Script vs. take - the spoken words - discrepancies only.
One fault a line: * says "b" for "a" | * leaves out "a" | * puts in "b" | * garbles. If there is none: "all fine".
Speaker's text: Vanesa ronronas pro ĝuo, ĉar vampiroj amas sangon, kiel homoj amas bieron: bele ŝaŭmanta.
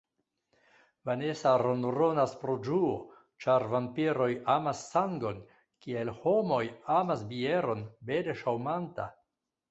all fine